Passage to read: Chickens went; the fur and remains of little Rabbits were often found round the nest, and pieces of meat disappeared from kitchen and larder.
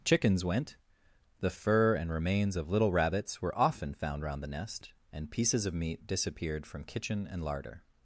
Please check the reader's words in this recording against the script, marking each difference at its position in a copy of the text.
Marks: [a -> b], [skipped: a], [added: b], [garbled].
Chickens went; the fur and remains of little Rabbits were often found round the nest, and pieces of meat disappeared from kitchen and larder.